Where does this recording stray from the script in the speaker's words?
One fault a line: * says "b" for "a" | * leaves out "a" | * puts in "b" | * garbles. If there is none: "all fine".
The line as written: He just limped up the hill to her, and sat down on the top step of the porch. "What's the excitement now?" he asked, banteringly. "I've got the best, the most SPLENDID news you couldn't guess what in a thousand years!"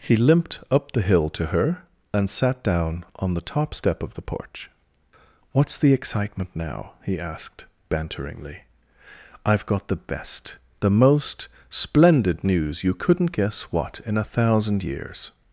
* leaves out "just"